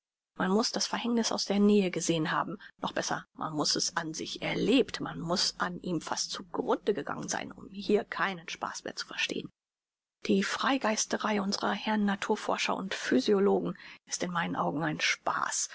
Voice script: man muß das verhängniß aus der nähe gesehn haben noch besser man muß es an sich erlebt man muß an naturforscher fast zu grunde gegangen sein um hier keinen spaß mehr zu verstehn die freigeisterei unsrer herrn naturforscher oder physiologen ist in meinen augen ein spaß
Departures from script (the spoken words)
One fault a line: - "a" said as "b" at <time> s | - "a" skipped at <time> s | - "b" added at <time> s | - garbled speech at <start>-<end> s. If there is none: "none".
- "naturforscher" said as "ihm" at 5.8 s
- "oder" said as "und" at 12.8 s